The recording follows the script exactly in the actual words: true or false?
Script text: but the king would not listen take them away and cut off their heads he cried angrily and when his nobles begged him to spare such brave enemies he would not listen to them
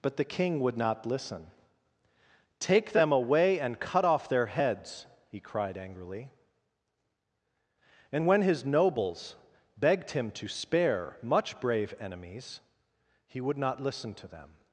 false